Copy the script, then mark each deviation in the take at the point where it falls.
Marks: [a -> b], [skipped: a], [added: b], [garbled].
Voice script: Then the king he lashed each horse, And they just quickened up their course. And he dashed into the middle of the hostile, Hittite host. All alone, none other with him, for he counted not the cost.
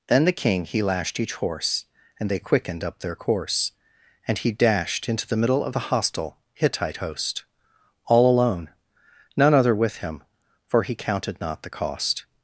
Then the king he lashed each horse, And they [skipped: just] quickened up their course. And he dashed into the middle of the hostile, Hittite host. All alone, none other with him, for he counted not the cost.